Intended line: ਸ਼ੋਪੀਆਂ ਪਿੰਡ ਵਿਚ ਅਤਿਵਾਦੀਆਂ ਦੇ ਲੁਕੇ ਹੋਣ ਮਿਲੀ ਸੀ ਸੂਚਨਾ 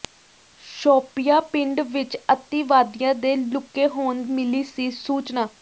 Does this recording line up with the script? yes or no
yes